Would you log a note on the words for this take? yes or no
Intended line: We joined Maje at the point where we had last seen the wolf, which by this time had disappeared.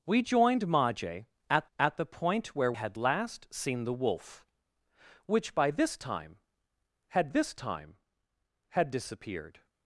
yes